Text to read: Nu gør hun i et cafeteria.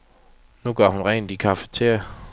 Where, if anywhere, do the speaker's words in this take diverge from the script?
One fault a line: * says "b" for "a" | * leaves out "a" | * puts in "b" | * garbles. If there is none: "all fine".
* puts in "rent"